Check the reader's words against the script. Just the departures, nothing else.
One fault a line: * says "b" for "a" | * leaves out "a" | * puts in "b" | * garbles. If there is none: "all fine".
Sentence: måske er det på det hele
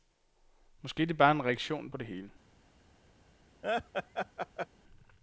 * puts in "bare en reaktion"